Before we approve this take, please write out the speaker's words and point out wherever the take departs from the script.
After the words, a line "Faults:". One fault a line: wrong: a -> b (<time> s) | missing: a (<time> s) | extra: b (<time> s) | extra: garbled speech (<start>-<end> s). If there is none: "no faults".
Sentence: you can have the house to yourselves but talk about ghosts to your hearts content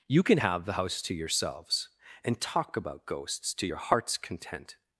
you can have the house to yourselves and talk about ghosts to your hearts content
Faults:
wrong: but -> and (2.2 s)